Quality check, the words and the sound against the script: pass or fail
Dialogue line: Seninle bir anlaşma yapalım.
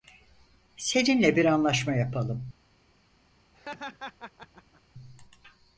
fail